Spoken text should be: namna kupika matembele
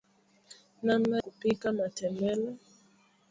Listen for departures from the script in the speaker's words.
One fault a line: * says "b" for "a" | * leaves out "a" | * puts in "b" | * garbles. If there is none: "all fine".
all fine